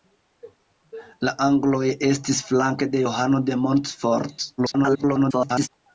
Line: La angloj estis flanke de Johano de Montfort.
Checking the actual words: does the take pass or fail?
fail